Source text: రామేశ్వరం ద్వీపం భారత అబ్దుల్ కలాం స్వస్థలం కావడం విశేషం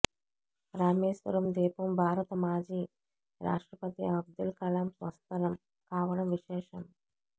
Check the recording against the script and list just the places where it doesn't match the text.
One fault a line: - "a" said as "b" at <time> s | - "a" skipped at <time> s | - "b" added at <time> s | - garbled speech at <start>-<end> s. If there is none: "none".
- "మాజీ రాష్ట్రపతి" added at 2.4 s